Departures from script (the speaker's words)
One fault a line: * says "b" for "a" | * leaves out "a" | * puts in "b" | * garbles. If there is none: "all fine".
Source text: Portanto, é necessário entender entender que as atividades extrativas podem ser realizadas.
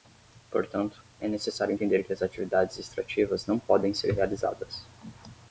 * leaves out "entender"
* puts in "não"